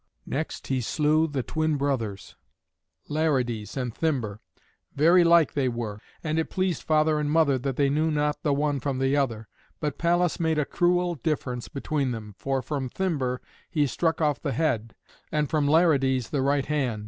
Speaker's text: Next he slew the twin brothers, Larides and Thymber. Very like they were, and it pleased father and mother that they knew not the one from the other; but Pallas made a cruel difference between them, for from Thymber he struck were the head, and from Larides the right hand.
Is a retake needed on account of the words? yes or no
yes